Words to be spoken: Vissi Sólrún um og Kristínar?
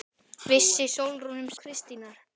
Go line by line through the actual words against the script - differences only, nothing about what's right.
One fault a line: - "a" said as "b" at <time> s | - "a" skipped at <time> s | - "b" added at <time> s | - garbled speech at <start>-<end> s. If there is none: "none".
none